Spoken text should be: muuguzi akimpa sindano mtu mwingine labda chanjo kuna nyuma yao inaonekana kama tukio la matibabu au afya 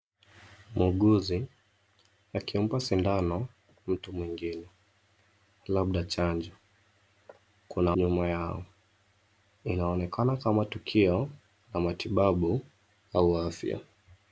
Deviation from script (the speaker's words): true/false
false